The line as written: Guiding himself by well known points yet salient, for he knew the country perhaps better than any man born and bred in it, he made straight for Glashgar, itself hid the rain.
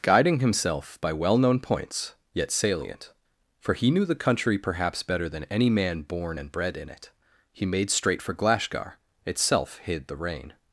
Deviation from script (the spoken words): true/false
false